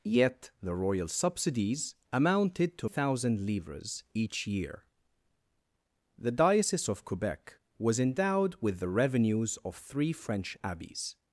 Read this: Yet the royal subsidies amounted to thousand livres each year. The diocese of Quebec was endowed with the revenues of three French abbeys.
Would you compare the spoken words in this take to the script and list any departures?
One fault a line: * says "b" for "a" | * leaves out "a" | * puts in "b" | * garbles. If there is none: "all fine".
all fine